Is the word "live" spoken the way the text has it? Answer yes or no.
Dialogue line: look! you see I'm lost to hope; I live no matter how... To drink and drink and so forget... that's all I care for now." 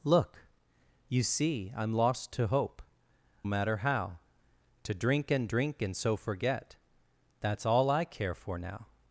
no